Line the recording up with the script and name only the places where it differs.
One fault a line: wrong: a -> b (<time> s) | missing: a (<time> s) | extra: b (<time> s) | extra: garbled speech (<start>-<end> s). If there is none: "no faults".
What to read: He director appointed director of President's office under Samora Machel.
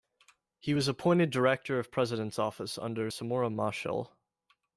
wrong: director -> was (0.7 s)